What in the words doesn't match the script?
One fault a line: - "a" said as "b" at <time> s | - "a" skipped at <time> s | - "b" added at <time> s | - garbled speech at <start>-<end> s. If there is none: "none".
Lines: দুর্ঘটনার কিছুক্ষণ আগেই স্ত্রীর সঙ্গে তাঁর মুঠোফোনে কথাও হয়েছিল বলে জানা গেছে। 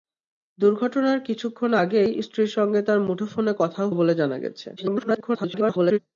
- "হয়েছিল" skipped at 3.9 s
- garbled speech at 4.8-6.0 s